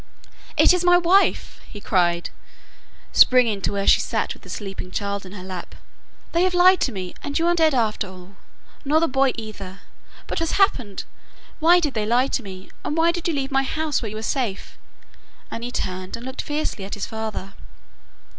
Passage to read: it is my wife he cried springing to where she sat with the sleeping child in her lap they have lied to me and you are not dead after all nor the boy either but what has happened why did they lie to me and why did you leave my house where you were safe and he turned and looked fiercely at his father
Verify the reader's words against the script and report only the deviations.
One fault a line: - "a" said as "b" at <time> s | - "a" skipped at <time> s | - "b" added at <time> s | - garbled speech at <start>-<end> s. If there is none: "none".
- "not" skipped at 7.5 s
- "what" skipped at 10.4 s